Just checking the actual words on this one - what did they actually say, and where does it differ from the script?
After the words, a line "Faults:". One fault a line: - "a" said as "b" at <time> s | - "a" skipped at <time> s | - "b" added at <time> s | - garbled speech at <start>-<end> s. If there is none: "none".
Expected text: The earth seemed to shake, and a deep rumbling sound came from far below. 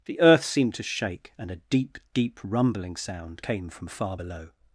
The earth seemed to shake, and a deep deep rumbling sound came from far below.
Faults:
- "deep" added at 2.1 s